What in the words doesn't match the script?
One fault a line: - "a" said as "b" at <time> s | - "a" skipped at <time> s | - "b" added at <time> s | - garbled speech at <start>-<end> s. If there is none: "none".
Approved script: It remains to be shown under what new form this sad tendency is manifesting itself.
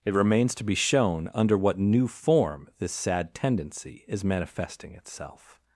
none